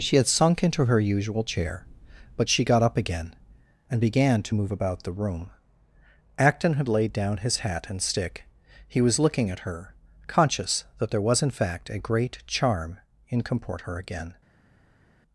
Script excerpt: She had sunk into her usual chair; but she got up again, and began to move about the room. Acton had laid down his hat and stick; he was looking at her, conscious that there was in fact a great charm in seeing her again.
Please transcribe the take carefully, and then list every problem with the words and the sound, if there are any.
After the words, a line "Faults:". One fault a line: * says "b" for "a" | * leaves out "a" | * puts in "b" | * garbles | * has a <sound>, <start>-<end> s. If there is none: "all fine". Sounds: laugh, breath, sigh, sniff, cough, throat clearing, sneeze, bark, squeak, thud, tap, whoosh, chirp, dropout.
She had sunk into her usual chair; but she got up again, and began to move about the room. Acton had laid down his hat and stick; he was looking at her, conscious that there was in fact a great charm in comport her again.
Faults:
* says "comport" for "seeing"